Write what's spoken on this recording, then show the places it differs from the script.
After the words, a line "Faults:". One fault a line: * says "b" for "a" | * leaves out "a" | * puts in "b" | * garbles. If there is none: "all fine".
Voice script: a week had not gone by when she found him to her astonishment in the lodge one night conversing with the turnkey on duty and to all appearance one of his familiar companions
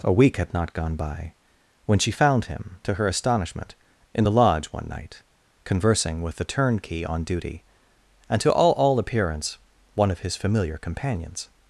a week had not gone by when she found him to her astonishment in the lodge one night conversing with the turnkey on duty and to all all appearance one of his familiar companions
Faults:
* puts in "all"